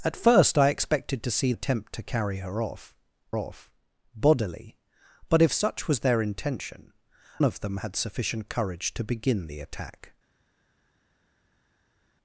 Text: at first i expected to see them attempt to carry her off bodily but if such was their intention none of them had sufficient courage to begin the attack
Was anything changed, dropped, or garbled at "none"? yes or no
yes